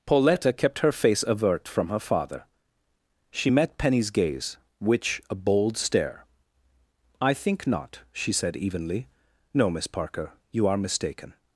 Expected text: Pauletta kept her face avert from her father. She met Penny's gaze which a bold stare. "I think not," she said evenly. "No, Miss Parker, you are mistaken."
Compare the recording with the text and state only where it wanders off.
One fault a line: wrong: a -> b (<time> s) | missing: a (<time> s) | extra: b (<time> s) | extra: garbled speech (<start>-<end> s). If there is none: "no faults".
no faults